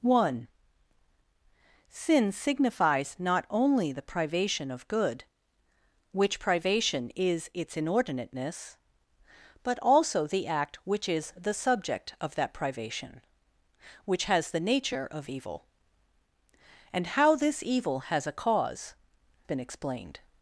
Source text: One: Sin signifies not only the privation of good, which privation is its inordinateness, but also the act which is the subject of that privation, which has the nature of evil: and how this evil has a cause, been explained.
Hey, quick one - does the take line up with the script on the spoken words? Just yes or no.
yes